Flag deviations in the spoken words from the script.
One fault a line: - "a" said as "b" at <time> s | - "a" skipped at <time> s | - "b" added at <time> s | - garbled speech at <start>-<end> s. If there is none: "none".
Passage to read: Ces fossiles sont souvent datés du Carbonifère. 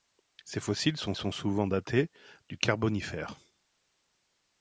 - "sont" added at 1.1 s